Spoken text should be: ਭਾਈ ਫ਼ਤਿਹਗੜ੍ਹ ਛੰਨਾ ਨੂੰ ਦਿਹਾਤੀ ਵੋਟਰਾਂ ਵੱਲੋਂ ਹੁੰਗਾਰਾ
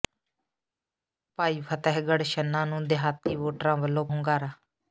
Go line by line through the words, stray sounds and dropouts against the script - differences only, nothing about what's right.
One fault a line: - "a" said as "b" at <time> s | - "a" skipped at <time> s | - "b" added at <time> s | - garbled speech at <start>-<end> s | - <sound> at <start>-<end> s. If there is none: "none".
none